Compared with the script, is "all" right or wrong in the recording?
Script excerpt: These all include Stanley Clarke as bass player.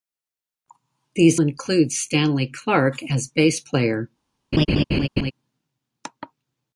wrong